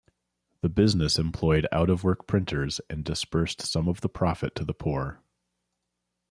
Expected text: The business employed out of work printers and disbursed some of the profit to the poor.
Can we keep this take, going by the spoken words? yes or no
yes